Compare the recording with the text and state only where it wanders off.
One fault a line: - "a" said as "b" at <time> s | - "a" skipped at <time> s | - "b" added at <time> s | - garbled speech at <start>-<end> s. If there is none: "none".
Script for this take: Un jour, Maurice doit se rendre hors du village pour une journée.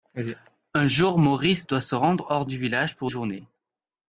- "une" skipped at 3.1 s